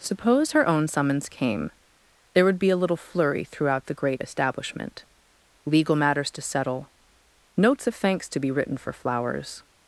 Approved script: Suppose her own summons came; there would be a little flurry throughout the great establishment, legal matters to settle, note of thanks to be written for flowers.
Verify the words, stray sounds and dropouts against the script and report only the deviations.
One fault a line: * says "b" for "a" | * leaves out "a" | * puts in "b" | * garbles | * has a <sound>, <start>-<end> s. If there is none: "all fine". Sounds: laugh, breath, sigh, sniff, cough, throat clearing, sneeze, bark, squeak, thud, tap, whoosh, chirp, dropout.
* says "notes" for "note"